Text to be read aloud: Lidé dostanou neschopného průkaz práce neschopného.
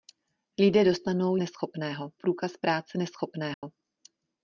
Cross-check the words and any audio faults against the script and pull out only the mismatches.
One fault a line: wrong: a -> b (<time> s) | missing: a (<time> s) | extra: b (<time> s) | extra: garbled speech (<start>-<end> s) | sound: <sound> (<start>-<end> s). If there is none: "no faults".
sound: dropout (3.5-3.6 s)